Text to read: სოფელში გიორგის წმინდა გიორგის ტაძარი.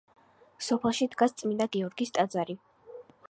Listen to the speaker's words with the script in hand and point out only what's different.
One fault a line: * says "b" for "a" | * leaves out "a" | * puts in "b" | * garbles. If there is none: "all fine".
* says "დგას" for "გიორგის"